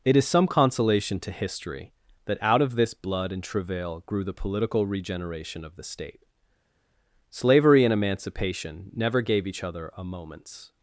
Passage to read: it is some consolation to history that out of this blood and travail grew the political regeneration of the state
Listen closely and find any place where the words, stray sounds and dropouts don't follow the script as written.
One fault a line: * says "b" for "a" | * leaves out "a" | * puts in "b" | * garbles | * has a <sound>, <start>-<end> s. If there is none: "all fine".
* puts in "slavery and emancipation never gave each other a moment's"